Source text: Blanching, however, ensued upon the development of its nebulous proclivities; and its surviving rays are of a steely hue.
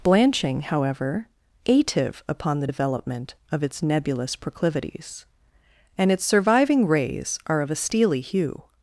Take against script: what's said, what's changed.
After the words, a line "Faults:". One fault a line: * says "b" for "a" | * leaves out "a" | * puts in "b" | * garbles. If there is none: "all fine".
Blanching, however, ative upon the development of its nebulous proclivities; and its surviving rays are of a steely hue.
Faults:
* says "ative" for "ensued"